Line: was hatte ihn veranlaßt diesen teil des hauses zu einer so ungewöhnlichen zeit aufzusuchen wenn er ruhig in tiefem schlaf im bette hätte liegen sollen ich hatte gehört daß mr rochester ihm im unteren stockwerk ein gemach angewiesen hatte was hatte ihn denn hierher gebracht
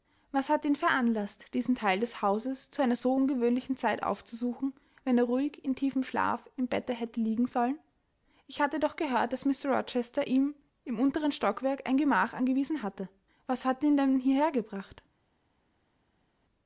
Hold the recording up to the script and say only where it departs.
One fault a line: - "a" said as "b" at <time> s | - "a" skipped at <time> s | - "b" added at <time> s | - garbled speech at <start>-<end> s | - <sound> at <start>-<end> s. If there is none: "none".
- "doch" added at 8.8 s